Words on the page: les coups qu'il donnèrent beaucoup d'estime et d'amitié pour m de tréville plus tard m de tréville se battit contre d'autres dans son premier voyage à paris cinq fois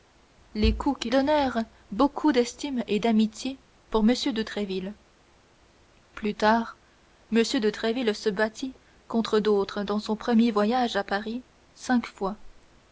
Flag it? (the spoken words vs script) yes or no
no